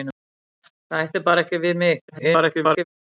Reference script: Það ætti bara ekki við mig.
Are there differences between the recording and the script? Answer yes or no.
yes